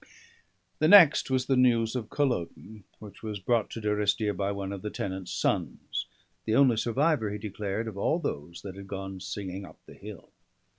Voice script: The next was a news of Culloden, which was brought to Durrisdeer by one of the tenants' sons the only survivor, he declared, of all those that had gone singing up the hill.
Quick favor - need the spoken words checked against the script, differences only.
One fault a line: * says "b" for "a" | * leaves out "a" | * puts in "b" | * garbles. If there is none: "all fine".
* says "the" for "a"